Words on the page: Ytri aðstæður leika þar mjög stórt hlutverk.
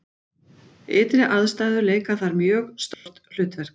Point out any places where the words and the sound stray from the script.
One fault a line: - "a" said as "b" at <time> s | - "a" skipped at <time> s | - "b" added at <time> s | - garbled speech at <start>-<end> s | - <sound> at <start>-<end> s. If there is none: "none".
- dropout at 2.9-3.1 s